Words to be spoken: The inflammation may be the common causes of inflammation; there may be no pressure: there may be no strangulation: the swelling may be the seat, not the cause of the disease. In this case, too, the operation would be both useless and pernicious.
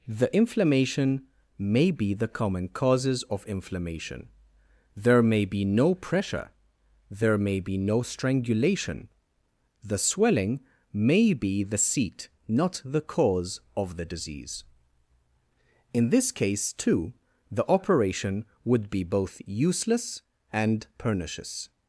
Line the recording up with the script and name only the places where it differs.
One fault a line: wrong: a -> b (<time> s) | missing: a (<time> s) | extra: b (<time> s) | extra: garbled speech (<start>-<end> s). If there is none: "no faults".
no faults